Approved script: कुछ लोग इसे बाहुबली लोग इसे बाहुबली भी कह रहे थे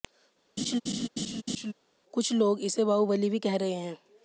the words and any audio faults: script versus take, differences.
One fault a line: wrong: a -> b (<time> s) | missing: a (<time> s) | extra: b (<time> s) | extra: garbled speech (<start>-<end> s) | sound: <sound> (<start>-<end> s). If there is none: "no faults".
sound: laugh (0.6-1.7 s)
missing: लोग इसे बाहुबली (3.3 s)
wrong: थे -> हैं (3.7 s)